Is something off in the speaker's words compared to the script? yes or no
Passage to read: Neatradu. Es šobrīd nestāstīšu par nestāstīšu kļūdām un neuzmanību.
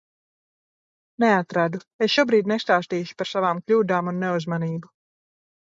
yes